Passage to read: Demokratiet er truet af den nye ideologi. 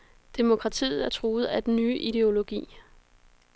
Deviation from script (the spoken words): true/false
false